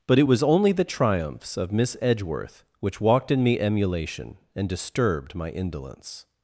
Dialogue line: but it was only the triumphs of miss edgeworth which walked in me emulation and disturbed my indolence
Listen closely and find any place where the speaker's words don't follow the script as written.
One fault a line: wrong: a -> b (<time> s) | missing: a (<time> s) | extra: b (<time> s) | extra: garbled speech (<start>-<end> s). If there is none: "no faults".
no faults